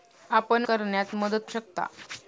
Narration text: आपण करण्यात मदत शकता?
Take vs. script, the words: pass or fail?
pass